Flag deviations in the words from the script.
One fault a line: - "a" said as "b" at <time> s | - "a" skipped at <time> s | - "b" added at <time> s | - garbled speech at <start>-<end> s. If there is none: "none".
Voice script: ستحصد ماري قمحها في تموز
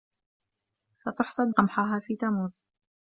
- "ماري" skipped at 1.5 s